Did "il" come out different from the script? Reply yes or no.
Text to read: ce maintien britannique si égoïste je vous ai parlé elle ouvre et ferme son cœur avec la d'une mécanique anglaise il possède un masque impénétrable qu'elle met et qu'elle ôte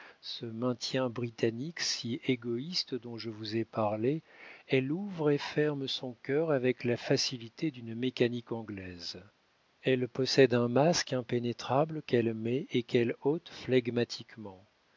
yes